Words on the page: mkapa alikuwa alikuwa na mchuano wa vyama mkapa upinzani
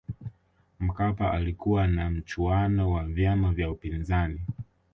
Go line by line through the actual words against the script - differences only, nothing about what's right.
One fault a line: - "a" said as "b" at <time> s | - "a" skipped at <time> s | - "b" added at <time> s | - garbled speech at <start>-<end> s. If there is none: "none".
- "alikuwa" skipped at 1.9 s
- "mkapa" said as "vya" at 3.5 s